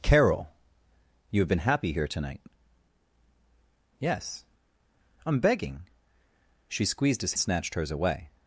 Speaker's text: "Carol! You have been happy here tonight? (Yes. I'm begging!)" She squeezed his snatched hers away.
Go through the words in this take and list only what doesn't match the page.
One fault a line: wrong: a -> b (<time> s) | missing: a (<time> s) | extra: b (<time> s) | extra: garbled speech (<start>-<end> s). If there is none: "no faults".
no faults